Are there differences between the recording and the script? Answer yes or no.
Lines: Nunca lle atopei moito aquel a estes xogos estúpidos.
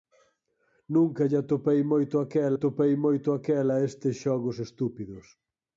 yes